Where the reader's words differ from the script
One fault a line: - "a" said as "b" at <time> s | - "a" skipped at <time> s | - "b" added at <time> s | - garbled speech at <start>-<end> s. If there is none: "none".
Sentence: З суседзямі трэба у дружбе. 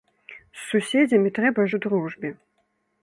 none